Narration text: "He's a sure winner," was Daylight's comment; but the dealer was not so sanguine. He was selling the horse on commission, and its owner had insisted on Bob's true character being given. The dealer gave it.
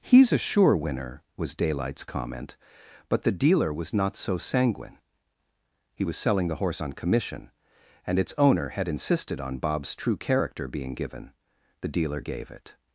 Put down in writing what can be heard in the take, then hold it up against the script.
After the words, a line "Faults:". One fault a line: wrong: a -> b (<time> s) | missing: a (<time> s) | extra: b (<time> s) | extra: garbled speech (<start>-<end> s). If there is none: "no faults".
"He's a sure winner," was Daylight's comment; but the dealer was not so sanguine. He was selling the horse on commission, and its owner had insisted on Bob's true character being given. The dealer gave it.
Faults:
no faults